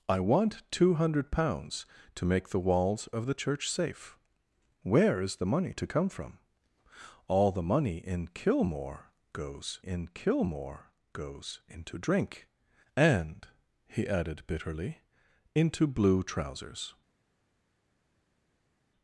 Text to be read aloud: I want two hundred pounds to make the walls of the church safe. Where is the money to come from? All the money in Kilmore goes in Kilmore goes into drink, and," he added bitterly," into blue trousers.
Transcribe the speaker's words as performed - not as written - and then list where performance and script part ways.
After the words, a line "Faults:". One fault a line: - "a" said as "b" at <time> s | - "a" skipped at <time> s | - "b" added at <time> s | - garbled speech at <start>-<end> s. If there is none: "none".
I want two hundred pounds to make the walls of the church safe. Where is the money to come from? All the money in Kilmore goes in Kilmore goes into drink, and," he added bitterly," into blue trousers.
Faults:
none